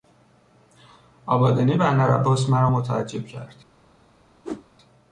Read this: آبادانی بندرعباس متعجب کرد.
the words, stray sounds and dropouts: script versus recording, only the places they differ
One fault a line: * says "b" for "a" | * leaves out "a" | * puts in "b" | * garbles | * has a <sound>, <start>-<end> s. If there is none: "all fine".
* puts in "مرا"
* has a whoosh, 4.4-4.7 s